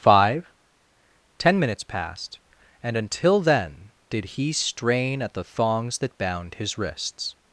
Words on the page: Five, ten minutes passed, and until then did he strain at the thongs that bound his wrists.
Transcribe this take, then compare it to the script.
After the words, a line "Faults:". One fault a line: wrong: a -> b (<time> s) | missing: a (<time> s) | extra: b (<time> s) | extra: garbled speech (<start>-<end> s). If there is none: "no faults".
Five, ten minutes passed, and until then did he strain at the thongs that bound his wrists.
Faults:
no faults